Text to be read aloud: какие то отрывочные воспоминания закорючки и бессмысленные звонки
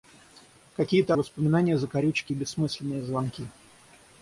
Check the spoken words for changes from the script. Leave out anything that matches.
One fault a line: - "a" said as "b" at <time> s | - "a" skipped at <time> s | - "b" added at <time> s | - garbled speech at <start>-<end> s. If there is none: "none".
- "отрывочные" skipped at 1.1 s